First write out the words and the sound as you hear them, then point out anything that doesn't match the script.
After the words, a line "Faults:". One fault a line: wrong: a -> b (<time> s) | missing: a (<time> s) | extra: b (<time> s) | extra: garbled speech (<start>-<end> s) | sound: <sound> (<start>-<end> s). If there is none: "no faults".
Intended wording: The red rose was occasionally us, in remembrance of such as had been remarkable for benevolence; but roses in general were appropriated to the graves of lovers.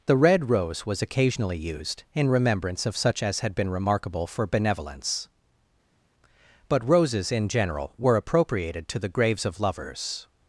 The red rose was occasionally used, in remembrance of such as had been remarkable for benevolence; but roses in general were appropriated to the graves of lovers.
Faults:
wrong: us -> used (1.6 s)